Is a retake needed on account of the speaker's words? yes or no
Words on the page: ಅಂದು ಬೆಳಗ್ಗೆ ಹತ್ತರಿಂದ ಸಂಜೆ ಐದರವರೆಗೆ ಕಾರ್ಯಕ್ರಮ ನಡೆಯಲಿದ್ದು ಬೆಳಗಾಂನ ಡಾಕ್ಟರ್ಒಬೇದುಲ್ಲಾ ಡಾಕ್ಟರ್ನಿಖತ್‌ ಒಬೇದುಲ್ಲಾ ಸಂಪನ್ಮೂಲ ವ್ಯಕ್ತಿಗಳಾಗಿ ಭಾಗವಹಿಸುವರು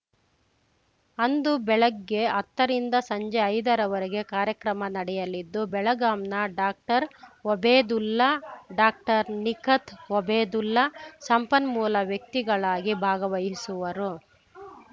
no